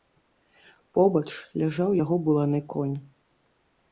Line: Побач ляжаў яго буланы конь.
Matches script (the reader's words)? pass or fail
pass